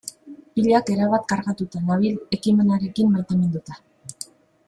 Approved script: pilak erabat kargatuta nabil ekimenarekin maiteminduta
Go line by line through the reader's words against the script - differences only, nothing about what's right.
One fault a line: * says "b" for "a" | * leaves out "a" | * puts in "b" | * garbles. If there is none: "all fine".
all fine